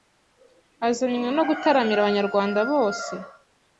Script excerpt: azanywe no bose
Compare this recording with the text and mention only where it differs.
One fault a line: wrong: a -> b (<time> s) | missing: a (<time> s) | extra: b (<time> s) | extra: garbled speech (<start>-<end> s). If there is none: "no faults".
extra: gutaramira abanyarwanda (1.5 s)